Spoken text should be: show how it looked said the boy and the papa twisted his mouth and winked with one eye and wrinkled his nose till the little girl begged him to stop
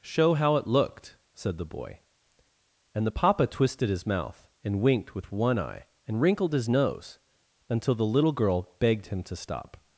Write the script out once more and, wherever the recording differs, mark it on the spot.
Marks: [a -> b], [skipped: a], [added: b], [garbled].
show how it looked said the boy and the papa twisted his mouth and winked with one eye and wrinkled his nose [till -> until] the little girl begged him to stop